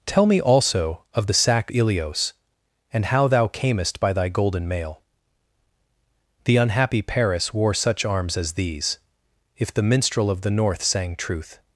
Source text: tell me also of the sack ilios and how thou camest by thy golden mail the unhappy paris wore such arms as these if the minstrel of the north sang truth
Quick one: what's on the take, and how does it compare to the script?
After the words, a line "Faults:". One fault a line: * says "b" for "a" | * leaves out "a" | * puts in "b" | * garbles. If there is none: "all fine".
tell me also of the sack ilios and how thou camest by thy golden mail the unhappy paris wore such arms as these if the minstrel of the north sang truth
Faults:
all fine